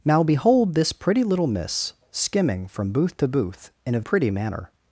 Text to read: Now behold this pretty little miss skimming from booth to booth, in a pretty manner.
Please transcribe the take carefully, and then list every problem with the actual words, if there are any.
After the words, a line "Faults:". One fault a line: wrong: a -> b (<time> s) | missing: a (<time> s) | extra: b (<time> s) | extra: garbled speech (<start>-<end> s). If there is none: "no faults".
Now behold this pretty little miss skimming from booth to booth, in a pretty manner.
Faults:
no faults